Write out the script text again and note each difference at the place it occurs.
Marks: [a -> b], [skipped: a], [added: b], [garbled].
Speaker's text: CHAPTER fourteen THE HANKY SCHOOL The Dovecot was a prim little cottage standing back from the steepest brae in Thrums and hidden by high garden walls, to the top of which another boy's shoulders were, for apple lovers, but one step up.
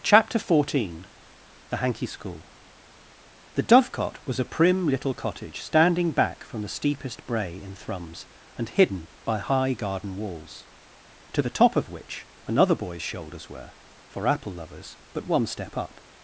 CHAPTER fourteen THE HANKY SCHOOL The Dovecot was a prim little cottage standing back from the steepest brae in Thrums and hidden by high garden walls, to the top of which another boy's shoulders were, for apple lovers, but one step up.